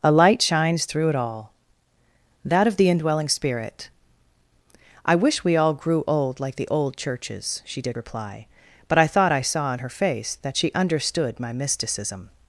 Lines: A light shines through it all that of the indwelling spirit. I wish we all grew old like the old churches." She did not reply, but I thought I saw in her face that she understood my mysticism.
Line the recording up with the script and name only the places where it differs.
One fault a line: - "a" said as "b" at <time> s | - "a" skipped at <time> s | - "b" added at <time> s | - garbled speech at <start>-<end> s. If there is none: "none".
- "not" skipped at 8.0 s